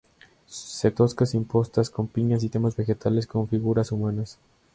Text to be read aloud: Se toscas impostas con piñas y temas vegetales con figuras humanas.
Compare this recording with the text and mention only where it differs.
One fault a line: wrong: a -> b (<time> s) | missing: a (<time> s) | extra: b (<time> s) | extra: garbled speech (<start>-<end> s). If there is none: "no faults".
no faults